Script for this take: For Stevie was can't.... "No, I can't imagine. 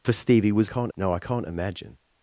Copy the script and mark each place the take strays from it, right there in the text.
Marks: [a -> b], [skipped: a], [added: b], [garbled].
For Stevie was can't.... "No, I can't imagine.